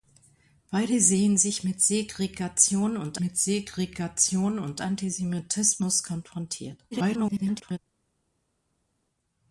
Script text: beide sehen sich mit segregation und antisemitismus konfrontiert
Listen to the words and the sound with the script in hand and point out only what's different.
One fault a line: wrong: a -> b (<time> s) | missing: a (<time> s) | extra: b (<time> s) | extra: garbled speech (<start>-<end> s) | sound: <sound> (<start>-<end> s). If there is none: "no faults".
extra: mit segregation und (3.2 s)
extra: garbled speech (6.9-7.8 s)